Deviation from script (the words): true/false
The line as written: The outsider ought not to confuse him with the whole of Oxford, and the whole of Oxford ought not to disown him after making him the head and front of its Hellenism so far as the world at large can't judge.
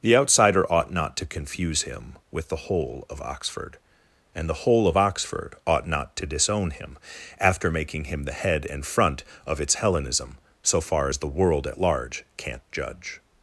false